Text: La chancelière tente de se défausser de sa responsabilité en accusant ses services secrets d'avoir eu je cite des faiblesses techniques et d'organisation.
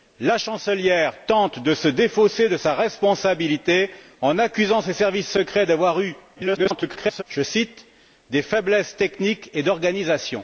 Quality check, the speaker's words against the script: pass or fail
fail